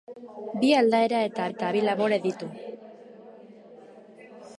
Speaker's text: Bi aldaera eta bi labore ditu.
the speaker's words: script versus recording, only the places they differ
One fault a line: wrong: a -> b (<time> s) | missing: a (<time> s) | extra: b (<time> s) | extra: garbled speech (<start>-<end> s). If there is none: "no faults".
extra: eta (1.5 s)